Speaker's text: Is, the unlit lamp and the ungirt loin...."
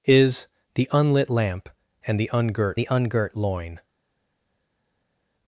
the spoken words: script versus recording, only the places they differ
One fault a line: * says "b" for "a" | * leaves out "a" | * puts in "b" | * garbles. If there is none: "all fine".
* puts in "the ungirt"